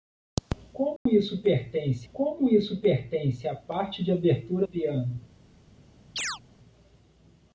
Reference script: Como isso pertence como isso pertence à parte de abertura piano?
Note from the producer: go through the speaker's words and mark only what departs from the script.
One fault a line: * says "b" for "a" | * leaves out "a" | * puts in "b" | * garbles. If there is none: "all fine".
all fine